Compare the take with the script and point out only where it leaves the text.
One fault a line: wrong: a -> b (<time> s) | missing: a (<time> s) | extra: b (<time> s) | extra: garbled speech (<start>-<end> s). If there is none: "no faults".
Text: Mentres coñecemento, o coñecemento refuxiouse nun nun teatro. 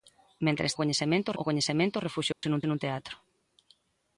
no faults